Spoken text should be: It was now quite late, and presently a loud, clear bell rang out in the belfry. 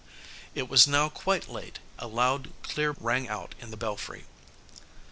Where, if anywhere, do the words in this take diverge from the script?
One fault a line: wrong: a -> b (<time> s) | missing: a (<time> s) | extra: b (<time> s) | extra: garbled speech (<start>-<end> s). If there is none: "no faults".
missing: and presently (1.8 s)
missing: bell (2.9 s)